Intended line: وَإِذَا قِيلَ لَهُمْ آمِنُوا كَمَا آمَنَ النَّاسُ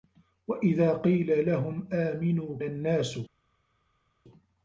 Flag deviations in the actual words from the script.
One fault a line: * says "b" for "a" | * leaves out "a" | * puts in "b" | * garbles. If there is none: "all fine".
* leaves out "كَمَا آمَنَ"